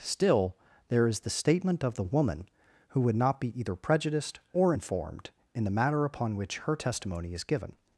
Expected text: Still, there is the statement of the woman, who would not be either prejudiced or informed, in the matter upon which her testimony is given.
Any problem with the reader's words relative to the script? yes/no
no